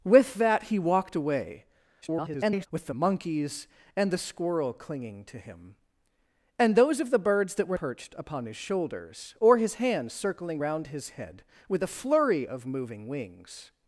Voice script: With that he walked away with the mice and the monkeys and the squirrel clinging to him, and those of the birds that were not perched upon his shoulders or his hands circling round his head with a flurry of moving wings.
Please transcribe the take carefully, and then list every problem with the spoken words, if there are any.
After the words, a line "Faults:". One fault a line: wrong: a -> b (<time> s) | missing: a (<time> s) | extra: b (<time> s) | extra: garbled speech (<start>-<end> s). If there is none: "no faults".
With that he walked away [garbled] with the the monkeys and the squirrel clinging to him, and those of the birds that were perched upon his shoulders or his hands circling round his head with a flurry of moving wings.
Faults:
extra: garbled speech (2.0-2.7 s)
missing: mice and (2.9 s)
missing: not (7.8 s)